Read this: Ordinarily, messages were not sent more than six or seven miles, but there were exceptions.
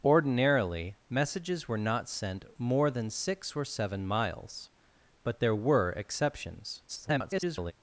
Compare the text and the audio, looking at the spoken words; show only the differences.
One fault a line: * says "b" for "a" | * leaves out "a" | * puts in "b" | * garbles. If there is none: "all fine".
* garbles